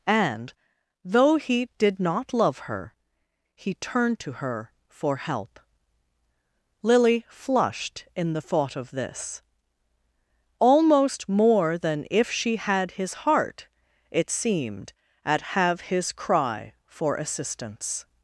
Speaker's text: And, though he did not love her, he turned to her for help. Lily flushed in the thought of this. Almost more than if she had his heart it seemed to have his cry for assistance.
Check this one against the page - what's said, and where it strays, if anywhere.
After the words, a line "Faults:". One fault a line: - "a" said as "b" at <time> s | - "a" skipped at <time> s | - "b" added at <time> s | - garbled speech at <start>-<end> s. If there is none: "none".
And, though he did not love her, he turned to her for help. Lily flushed in the thought of this. Almost more than if she had his heart it seemed at have his cry for assistance.
Faults:
- "to" said as "at" at 15.2 s